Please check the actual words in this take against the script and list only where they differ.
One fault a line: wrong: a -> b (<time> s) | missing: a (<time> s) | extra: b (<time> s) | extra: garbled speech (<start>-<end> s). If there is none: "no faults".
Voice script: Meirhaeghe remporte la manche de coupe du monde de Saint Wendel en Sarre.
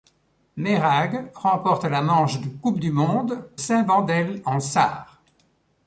missing: de (3.5 s)